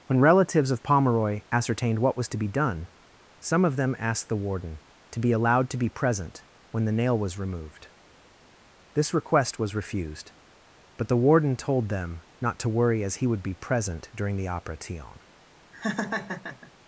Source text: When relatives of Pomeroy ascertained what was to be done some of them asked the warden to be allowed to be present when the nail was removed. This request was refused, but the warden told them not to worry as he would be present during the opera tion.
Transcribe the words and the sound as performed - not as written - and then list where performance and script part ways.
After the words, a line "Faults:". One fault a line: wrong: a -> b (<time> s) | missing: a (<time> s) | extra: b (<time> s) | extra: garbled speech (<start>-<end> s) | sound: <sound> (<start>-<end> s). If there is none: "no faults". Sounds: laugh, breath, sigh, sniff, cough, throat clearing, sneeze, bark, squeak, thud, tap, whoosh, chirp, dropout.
When relatives of Pomeroy ascertained what was to be done some of them asked the warden to be allowed to be present when the nail was removed. This request was refused, but the warden told them not to worry as he would be present during the opera tion.
Faults:
sound: laugh (15.7-16.7 s)